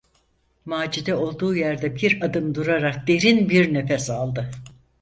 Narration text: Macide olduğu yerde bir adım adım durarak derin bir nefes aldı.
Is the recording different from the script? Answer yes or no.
yes